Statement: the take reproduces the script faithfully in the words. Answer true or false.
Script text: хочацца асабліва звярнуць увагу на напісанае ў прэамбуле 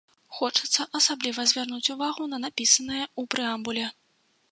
true